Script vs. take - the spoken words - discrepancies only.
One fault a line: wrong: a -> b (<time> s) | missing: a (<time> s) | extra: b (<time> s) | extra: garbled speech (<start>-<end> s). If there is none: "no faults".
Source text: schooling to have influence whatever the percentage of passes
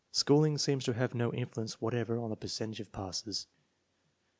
extra: seems (0.6 s)
extra: no (1.1 s)
extra: on (2.2 s)